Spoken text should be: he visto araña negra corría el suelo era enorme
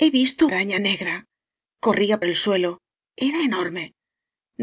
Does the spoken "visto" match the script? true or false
true